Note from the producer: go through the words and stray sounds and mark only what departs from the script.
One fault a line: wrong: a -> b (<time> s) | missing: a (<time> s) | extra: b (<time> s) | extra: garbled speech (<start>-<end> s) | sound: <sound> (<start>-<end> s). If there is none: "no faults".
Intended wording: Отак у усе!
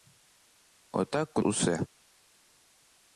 no faults